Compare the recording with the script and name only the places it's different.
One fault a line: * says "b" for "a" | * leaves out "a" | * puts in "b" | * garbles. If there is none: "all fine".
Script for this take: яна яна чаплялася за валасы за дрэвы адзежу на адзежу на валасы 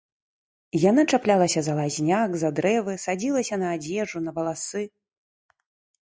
* leaves out "яна"
* says "лазняк" for "валасы"
* says "садзілася" for "адзежу"